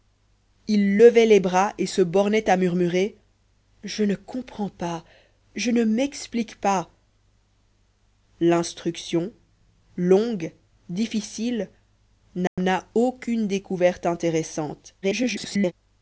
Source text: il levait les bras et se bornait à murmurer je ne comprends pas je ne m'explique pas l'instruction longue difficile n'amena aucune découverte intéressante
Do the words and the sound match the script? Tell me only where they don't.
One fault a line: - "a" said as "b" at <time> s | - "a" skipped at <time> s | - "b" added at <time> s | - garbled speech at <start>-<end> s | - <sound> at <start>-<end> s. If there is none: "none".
- dropout at 12.5-12.6 s
- garbled speech at 15.0-15.7 s